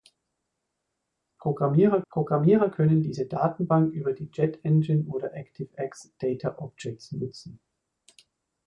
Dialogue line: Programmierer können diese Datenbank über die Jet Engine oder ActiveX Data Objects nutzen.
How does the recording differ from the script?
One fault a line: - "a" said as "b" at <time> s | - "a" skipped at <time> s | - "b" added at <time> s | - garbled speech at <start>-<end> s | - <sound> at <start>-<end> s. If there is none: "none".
- "programmierer" added at 2.1 s